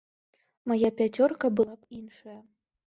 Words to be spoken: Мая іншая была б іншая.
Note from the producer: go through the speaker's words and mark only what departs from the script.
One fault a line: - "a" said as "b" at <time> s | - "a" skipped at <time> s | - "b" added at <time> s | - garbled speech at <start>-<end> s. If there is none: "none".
- "іншая" said as "пяцёрка" at 1.0 s